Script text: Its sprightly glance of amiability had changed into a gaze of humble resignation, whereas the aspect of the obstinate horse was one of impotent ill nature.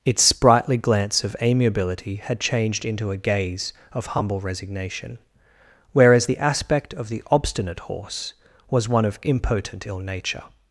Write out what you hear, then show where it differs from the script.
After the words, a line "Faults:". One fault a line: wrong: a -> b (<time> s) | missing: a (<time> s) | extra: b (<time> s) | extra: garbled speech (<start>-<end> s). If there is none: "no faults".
Its sprightly glance of amiability had changed into a gaze of humble resignation, whereas the aspect of the obstinate horse was one of impotent ill nature.
Faults:
no faults